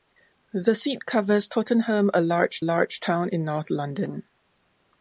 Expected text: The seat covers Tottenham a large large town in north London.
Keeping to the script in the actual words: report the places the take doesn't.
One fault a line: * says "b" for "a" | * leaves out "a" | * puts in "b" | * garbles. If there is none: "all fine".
all fine